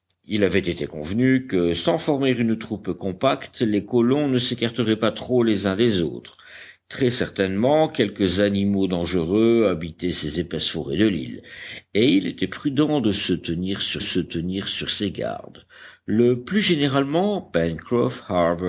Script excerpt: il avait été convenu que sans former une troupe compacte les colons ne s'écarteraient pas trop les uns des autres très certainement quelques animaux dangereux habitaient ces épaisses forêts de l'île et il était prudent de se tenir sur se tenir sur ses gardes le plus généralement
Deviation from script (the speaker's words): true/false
false